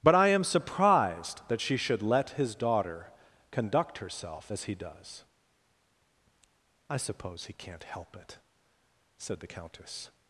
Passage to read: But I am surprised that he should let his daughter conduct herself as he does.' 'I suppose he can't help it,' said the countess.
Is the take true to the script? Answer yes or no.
no